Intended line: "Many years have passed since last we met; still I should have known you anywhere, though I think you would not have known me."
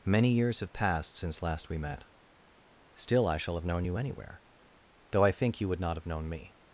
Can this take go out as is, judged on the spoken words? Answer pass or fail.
fail